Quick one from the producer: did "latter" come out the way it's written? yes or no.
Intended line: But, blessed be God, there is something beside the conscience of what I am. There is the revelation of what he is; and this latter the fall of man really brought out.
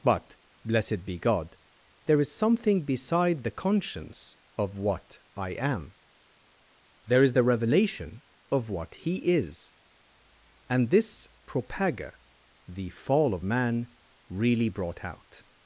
no